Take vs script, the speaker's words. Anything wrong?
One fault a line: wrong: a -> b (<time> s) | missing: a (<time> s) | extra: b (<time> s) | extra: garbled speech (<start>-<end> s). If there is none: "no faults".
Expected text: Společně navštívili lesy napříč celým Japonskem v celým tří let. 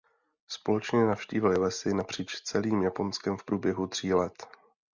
wrong: celým -> průběhu (3.4 s)